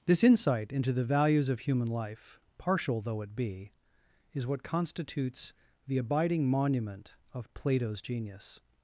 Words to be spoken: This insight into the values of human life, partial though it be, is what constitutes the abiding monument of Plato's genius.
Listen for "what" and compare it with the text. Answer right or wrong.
right